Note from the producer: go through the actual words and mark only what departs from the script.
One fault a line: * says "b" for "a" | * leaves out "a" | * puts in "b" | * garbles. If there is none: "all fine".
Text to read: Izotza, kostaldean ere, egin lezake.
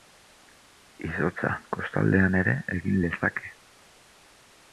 all fine